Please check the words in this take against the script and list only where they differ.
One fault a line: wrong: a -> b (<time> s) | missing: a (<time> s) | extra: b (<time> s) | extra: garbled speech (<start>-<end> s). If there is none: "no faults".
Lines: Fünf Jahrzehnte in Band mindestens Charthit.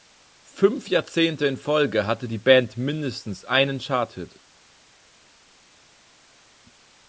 extra: Folge hatte die (1.6 s)
extra: einen (3.4 s)